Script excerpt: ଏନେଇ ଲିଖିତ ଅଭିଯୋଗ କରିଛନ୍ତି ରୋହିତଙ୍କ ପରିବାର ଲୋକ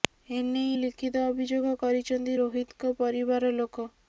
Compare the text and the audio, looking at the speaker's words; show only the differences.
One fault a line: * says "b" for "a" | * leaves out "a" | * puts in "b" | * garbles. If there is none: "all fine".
all fine